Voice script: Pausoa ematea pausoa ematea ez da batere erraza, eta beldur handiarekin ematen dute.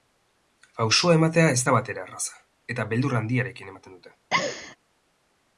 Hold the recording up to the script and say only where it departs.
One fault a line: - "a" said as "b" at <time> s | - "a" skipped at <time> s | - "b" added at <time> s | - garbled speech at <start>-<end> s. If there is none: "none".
- "pausoa ematea" skipped at 1.5 s